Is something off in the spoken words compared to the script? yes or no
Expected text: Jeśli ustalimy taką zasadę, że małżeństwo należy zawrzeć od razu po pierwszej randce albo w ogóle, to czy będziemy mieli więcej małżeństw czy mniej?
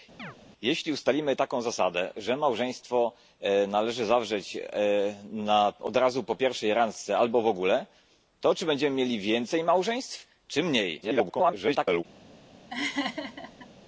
yes